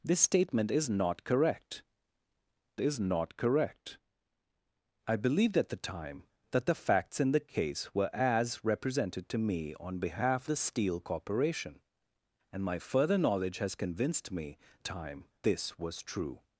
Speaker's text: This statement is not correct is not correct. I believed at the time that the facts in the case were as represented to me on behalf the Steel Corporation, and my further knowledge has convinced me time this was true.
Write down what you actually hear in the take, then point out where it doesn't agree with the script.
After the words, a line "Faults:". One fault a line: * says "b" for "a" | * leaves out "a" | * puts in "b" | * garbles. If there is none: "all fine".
This statement is not correct is not correct. I believed at the time that the facts in the case were as represented to me on behalf the Steel Corporation, and my further knowledge has convinced me time this was true.
Faults:
all fine